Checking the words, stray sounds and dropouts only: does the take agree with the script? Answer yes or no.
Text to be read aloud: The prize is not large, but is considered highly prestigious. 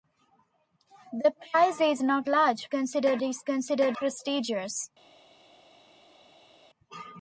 no